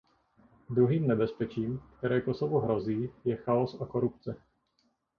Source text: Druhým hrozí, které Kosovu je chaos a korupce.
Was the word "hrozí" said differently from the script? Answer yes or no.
yes